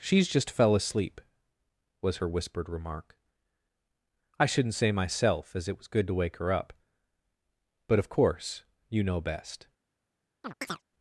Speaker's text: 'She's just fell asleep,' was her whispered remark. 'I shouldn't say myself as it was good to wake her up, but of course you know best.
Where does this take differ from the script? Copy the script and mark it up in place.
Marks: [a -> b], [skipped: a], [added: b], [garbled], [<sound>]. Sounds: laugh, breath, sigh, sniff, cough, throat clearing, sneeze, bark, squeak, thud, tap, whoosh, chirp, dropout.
'She's just fell asleep,' was her whispered remark. 'I shouldn't say myself as it was good to wake her up, but of course you know best. [chirp]